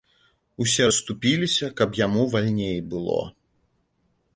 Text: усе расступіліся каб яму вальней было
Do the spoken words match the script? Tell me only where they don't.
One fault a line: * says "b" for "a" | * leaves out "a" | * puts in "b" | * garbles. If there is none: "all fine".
all fine